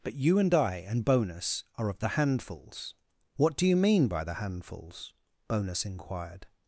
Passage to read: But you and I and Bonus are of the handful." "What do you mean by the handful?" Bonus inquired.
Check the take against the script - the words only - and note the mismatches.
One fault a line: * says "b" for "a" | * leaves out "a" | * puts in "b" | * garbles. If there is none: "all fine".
* says "handfuls" for "handful"
* says "handfuls" for "handful"